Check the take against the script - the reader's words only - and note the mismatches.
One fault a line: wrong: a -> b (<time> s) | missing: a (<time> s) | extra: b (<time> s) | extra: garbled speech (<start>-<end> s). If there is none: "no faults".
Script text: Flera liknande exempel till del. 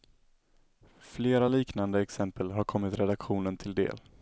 extra: har kommit redaktionen (2.5 s)